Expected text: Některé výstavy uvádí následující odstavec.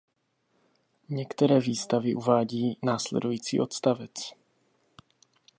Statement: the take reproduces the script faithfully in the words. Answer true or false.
true